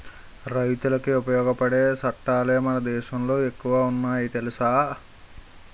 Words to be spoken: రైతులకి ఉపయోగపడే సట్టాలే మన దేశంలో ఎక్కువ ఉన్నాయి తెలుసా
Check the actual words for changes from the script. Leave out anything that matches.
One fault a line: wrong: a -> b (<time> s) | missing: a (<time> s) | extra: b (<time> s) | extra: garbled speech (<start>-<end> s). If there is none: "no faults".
no faults